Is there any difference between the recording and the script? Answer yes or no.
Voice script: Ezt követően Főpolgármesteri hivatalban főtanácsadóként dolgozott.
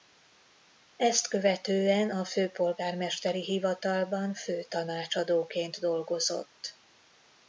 yes